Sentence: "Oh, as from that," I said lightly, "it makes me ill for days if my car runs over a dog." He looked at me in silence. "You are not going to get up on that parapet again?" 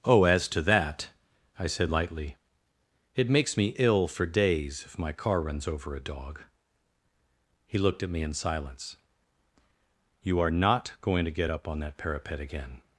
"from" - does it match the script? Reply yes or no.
no